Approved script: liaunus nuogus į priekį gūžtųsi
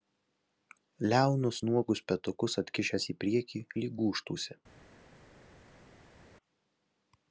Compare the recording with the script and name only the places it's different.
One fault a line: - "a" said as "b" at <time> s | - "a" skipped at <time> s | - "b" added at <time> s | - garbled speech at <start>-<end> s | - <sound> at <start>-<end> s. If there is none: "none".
- "petukus atkišęs" added at 2.1 s
- "lyg" added at 3.8 s